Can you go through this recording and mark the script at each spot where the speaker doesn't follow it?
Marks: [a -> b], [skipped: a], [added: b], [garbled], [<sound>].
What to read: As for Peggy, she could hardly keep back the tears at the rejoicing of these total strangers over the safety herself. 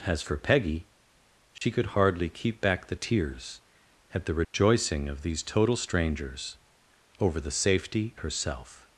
As for Peggy, she [dropout] could hardly keep back the tears at the rejoicing [dropout] of these total strangers over the safety herself.